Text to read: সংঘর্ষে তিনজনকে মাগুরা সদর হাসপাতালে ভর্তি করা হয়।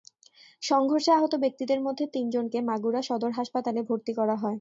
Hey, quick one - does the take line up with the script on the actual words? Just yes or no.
no